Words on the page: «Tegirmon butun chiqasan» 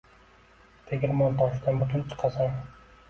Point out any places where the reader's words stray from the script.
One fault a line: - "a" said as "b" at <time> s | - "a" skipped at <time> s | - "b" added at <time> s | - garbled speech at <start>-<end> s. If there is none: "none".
- "toshidan" added at 1.4 s